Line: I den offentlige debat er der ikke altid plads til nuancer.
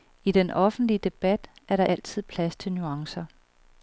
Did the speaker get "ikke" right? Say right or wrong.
wrong